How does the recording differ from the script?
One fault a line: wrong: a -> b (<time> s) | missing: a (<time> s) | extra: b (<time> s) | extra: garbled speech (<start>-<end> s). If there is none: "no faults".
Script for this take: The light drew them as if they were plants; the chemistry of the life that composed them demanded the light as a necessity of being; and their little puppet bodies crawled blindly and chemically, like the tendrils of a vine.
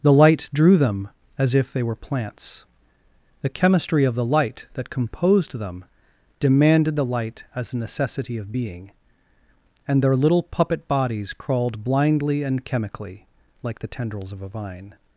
wrong: life -> light (4.2 s)